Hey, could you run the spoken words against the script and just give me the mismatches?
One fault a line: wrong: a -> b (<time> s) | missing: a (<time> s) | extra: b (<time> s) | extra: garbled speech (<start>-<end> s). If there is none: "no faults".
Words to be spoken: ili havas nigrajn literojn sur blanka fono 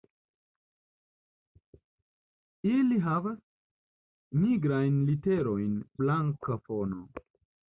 missing: sur (5.8 s)